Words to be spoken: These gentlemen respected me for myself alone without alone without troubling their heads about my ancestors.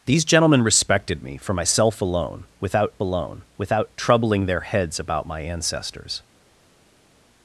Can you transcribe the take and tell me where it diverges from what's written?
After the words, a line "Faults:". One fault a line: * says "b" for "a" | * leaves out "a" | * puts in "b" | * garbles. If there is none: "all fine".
These gentlemen respected me for myself alone without alone without troubling their heads about my ancestors.
Faults:
all fine